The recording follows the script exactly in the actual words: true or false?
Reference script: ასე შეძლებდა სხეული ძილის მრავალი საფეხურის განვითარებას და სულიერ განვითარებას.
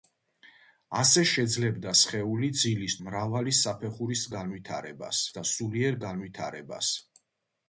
true